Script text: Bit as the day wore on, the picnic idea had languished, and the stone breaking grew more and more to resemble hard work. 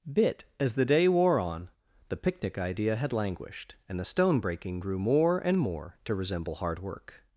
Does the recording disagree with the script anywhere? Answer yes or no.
no